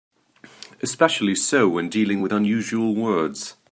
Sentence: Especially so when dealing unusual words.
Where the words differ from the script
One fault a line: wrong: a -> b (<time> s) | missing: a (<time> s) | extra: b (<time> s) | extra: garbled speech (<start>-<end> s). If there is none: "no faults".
extra: with (2.2 s)